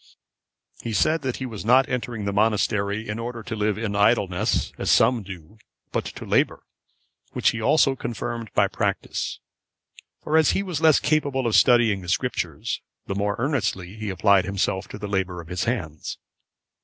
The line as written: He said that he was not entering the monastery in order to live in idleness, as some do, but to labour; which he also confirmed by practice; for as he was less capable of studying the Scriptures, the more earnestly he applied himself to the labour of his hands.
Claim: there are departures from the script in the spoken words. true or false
false